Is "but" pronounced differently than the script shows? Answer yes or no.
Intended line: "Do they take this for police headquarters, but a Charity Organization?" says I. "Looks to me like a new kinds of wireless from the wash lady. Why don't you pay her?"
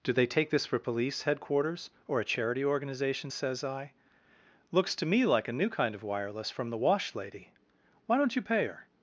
yes